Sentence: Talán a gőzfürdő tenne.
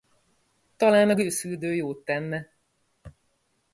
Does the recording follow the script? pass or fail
fail